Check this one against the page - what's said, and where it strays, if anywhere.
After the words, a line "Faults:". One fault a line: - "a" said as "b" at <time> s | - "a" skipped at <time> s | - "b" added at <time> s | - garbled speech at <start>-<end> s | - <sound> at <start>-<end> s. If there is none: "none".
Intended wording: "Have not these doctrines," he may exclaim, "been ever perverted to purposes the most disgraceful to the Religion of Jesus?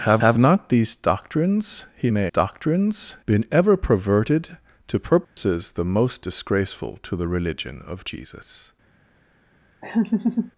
"Have have not these doctrines," he may doctrines, "been ever perverted to purposes the most disgraceful to the Religion of Jesus?
Faults:
- "have" added at 0.2 s
- "exclaim" said as "doctrines" at 2.3 s
- dropout at 5.2-5.4 s
- laugh at 9.8-10.5 s